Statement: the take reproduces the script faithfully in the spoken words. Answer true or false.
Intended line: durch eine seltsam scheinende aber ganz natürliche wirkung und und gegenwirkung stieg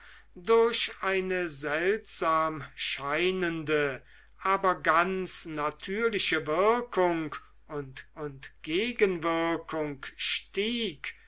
true